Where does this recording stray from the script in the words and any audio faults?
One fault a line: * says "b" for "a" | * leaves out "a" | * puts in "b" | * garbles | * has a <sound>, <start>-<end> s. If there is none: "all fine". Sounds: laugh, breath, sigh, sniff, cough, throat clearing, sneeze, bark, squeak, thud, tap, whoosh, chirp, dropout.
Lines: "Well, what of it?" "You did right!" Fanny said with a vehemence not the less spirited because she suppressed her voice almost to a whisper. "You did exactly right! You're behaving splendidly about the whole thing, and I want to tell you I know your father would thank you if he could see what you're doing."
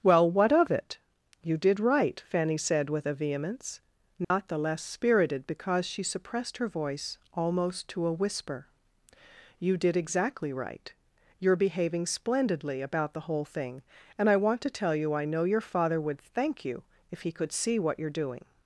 * has a dropout, 4.2-4.3 s